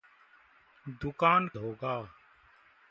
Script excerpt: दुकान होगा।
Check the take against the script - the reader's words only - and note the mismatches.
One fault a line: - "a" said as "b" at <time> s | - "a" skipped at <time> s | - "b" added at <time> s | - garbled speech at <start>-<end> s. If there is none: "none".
none